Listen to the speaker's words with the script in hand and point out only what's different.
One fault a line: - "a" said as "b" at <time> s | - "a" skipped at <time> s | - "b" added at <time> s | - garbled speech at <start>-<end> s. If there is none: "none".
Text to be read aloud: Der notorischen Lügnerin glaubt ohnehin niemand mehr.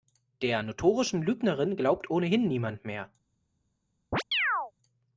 none